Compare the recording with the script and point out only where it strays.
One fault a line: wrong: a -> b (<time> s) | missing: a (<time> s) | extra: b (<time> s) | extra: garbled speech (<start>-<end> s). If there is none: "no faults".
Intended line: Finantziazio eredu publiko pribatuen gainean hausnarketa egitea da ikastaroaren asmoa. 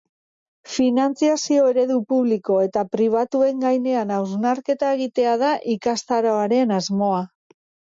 extra: eta (2.7 s)